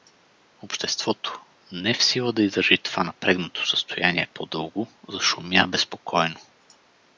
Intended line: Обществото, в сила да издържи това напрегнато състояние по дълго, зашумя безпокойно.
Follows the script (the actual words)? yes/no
no